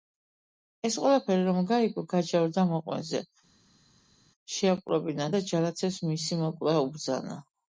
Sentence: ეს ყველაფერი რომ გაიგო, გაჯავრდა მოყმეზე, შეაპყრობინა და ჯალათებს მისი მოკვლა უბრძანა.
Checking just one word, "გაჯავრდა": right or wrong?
right